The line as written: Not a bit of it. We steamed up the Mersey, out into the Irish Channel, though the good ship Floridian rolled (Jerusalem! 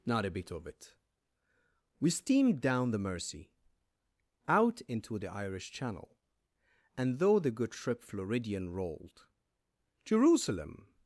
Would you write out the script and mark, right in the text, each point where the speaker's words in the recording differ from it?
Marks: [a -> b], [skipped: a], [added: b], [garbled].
Not a bit of it. We steamed [up -> down] the Mersey, out into the Irish Channel, [added: and] though the good ship Floridian rolled (Jerusalem!